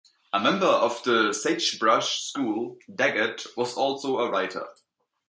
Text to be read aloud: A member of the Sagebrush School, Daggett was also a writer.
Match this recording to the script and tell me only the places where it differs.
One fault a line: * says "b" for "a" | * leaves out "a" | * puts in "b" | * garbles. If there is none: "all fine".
all fine